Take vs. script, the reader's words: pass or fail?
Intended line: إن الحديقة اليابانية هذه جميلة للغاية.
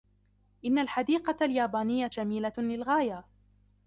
fail